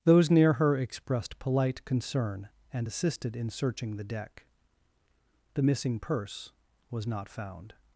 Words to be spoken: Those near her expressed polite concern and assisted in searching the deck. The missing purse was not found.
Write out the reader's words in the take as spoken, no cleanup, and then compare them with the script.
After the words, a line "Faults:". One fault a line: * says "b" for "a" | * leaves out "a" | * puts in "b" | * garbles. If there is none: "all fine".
Those near her expressed polite concern and assisted in searching the deck. The missing purse was not found.
Faults:
all fine